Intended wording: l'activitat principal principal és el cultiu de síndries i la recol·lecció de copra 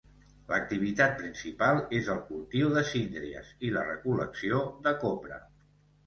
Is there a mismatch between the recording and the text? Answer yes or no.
yes